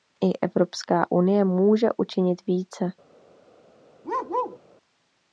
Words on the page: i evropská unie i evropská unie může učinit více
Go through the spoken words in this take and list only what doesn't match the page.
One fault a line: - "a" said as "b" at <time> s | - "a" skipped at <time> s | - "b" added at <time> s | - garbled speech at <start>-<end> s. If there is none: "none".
- "i evropská unie" skipped at 1.5 s